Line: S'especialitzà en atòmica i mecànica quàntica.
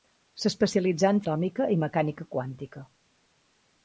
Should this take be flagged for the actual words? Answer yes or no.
no